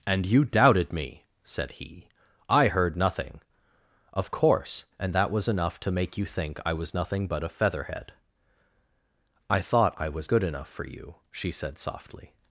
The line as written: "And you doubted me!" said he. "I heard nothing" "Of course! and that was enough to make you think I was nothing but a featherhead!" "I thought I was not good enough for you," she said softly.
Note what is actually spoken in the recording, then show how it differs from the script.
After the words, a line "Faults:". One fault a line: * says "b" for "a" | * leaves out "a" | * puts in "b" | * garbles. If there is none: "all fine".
"And you doubted me!" said he. "I heard nothing" "Of course! and that was enough to make you think I was nothing but a featherhead!" "I thought I was good enough for you," she said softly.
Faults:
* leaves out "not"